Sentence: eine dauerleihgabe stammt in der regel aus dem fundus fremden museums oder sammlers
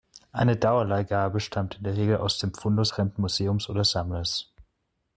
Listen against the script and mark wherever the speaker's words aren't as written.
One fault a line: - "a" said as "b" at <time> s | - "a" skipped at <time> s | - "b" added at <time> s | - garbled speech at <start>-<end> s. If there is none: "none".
none